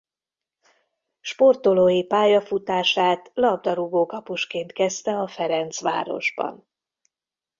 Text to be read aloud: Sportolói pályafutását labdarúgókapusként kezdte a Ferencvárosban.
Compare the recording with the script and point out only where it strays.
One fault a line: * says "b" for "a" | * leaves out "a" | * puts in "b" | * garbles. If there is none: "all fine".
all fine